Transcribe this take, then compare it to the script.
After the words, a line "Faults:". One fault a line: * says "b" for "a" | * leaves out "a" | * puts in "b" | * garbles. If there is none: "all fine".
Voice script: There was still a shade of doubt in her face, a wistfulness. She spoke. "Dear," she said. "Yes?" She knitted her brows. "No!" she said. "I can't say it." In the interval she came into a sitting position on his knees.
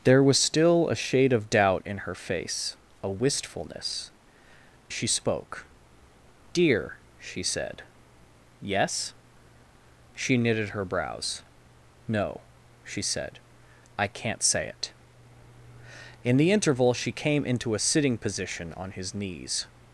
There was still a shade of doubt in her face, a wistfulness. She spoke. "Dear," she said. "Yes?" She knitted her brows. "No!" she said. "I can't say it." In the interval she came into a sitting position on his knees.
Faults:
all fine